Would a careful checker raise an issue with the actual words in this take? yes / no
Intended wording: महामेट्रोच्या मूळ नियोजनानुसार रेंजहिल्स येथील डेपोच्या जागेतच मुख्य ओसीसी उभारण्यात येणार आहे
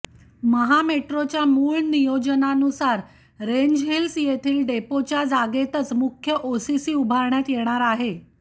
no